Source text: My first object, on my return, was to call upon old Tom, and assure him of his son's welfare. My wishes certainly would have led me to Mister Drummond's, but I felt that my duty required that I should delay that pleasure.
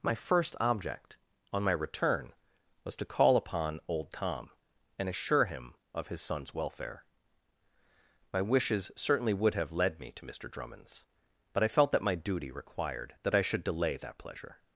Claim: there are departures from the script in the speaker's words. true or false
false